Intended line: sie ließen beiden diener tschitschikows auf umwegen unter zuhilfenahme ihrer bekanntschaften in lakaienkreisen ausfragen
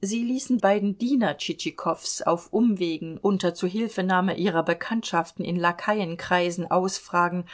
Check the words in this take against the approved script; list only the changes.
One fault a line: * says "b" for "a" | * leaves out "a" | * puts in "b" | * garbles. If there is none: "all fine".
all fine